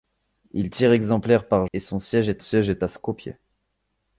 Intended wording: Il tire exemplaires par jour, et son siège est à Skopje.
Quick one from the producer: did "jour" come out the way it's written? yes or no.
no